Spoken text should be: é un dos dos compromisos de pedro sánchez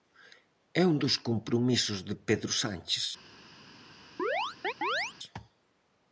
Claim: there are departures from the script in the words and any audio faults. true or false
true